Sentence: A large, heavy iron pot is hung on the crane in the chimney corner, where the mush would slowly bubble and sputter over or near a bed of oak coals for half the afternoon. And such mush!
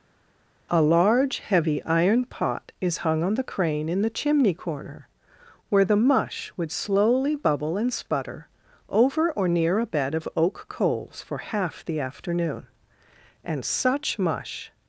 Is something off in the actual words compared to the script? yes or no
no